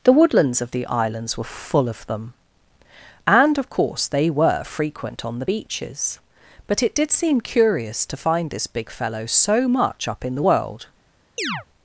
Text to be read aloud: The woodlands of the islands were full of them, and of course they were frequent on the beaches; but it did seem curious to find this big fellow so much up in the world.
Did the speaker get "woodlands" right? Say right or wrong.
right